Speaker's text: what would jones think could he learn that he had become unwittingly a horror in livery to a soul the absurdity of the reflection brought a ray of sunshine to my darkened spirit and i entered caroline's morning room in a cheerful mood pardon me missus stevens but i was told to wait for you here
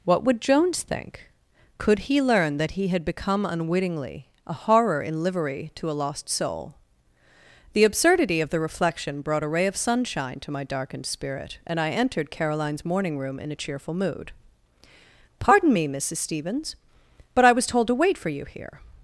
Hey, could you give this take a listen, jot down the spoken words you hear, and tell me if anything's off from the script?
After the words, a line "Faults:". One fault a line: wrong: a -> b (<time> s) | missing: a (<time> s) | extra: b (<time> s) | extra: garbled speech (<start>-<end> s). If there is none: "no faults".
what would jones think could he learn that he had become unwittingly a horror in livery to a lost soul the absurdity of the reflection brought a ray of sunshine to my darkened spirit and i entered caroline's morning room in a cheerful mood pardon me missus stevens but i was told to wait for you here
Faults:
extra: lost (6.0 s)